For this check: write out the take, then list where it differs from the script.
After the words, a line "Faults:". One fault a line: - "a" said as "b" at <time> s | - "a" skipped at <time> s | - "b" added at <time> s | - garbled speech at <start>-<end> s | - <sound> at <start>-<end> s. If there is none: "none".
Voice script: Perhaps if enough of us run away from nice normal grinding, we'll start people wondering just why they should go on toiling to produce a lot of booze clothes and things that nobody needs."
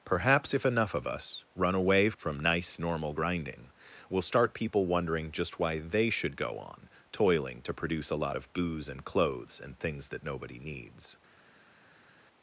Perhaps if enough of us run away from nice normal grinding, we'll start people wondering just why they should go on toiling to produce a lot of booze and clothes and things that nobody needs."
Faults:
- "and" added at 8.9 s